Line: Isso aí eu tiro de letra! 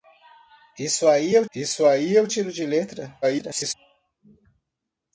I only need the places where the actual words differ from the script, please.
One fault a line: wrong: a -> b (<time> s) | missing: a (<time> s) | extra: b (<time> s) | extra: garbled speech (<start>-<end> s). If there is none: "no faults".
extra: isso aí eu (1.6 s)
extra: garbled speech (3.2-3.7 s)